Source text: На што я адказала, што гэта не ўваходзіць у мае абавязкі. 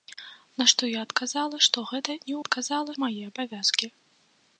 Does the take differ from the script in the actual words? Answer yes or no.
yes